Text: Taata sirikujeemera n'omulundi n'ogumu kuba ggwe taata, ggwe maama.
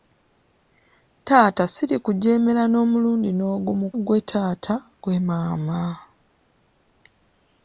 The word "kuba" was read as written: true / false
false